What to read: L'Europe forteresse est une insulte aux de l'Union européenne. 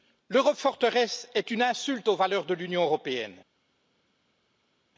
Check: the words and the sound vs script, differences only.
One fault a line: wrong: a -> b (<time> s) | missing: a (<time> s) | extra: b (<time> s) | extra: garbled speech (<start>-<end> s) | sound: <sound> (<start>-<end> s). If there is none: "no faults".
extra: valeurs (2.1 s)